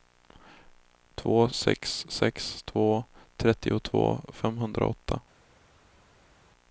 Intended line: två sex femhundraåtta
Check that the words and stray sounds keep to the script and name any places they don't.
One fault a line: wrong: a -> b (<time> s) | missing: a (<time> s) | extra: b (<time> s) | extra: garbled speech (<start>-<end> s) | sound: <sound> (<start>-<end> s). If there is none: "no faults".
extra: sex två trettiotvå (2.1 s)